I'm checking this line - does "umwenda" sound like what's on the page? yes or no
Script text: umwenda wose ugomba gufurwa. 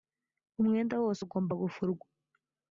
yes